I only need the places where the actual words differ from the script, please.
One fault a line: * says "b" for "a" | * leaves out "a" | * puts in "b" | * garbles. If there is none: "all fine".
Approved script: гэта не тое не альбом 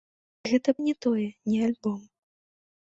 all fine